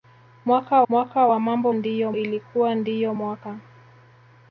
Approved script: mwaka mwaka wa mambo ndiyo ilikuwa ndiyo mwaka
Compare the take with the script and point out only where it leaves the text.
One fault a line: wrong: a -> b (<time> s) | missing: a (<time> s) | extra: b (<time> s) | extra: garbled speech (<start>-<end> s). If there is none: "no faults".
no faults